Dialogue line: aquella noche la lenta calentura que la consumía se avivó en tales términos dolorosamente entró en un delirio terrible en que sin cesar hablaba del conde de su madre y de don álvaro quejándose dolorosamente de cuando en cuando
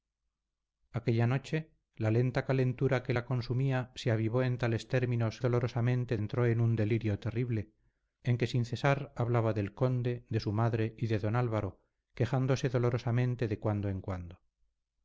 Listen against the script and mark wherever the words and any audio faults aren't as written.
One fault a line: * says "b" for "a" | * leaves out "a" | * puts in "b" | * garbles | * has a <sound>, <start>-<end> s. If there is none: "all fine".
all fine